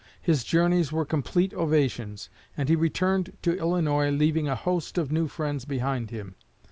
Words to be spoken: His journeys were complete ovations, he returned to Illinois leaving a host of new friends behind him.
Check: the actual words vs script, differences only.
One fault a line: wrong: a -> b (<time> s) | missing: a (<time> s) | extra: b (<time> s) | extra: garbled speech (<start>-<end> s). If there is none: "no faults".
extra: and (2.6 s)